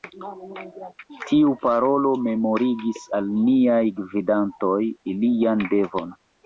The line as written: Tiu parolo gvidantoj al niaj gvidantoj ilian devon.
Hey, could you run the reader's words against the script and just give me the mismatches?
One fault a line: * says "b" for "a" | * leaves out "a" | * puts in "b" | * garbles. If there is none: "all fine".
* says "memorigis" for "gvidantoj"